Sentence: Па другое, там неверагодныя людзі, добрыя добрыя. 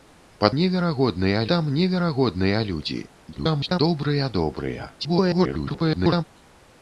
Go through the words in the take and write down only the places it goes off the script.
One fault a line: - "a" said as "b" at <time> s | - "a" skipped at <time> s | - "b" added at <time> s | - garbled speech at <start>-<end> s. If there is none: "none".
- "другое" said as "неверагодныя" at 0.6 s
- garbled speech at 3.3-3.8 s
- garbled speech at 5.0-6.2 s